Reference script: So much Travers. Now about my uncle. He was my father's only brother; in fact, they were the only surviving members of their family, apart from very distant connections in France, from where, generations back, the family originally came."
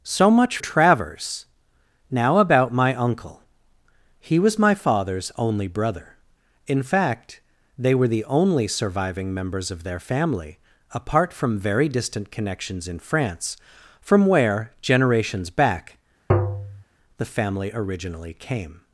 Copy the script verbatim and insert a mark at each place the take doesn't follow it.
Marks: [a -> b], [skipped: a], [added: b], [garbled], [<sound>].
So much Travers. Now about my uncle. He was my father's only brother; in fact, they were the only surviving members of their family, apart from very distant connections in France, from where, generations back, [tap] the family originally came."